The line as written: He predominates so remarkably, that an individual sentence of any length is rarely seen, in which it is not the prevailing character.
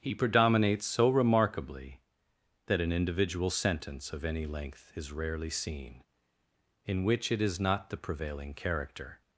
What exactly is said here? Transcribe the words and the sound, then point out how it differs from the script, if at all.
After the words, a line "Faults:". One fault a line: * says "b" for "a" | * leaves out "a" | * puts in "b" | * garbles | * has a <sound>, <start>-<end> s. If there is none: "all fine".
He predominates so remarkably, that an individual sentence of any length is rarely seen, in which it is not the prevailing character.
Faults:
all fine